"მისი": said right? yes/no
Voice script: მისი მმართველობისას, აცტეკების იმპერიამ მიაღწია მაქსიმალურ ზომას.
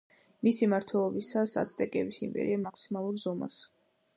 yes